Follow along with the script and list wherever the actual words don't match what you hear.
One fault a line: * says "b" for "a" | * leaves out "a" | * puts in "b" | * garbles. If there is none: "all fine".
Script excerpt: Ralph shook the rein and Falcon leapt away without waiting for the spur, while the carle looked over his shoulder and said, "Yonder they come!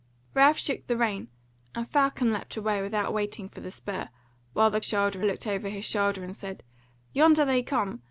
* says "shoulder" for "carle"